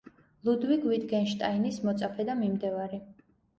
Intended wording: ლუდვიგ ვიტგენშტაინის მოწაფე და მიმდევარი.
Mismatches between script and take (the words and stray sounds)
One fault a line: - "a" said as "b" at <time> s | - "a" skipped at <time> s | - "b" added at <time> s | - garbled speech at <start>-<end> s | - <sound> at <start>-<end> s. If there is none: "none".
none